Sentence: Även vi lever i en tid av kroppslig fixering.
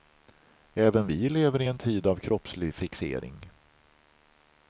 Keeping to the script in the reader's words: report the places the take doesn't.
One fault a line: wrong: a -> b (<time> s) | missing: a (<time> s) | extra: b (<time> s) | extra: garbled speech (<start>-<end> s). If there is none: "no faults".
no faults